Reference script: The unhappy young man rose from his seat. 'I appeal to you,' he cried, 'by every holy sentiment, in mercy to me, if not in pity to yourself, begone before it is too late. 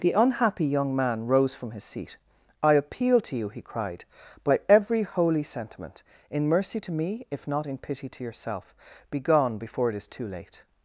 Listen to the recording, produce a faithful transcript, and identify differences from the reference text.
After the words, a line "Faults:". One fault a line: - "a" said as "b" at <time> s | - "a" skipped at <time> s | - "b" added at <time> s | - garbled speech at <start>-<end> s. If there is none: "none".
The unhappy young man rose from his seat. 'I appeal to you,' he cried, 'by every holy sentiment, in mercy to me, if not in pity to yourself, begone before it is too late.
Faults:
none